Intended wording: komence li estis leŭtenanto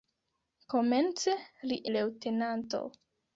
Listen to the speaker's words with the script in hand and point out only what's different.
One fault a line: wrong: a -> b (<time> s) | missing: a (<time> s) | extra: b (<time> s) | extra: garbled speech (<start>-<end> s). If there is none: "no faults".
missing: estis (1.8 s)